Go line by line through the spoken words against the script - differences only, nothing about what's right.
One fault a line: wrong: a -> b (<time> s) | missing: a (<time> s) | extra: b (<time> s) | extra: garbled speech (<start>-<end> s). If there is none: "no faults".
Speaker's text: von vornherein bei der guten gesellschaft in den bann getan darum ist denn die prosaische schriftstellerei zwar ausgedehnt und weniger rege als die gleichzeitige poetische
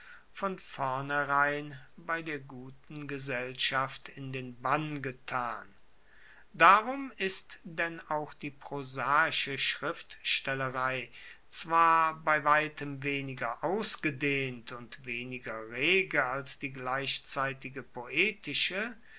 extra: auch (8.1 s)
extra: bei weitem weniger (12.2 s)